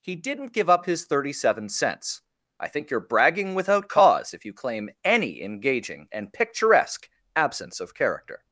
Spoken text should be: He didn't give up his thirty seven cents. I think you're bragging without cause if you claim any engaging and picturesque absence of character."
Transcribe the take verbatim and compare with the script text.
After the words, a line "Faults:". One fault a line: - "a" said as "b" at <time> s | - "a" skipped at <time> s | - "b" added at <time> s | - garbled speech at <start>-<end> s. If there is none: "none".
He didn't give up his thirty seven cents. I think you're bragging without cause if you claim any engaging and picturesque absence of character."
Faults:
none